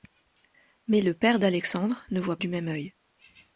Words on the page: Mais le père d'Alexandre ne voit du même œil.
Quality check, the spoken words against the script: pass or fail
pass